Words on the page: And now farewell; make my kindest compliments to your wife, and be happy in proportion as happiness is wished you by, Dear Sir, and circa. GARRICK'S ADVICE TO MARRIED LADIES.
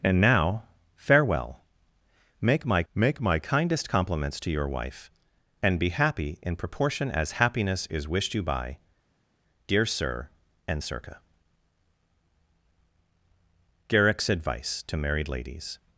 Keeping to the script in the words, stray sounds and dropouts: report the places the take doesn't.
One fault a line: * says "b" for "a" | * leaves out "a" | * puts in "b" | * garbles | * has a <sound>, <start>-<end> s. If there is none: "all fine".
* puts in "make my"